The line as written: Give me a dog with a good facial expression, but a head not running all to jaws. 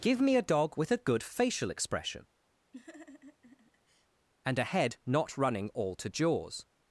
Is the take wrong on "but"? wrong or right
wrong